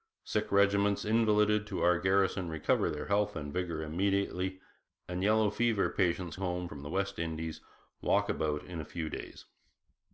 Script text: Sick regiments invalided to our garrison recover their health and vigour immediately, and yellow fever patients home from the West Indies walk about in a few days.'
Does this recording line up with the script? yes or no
yes